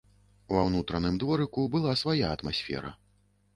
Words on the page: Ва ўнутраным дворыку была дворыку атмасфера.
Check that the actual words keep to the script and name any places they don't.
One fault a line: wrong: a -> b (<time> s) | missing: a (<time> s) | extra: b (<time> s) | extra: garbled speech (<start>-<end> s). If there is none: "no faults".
wrong: дворыку -> свая (2.0 s)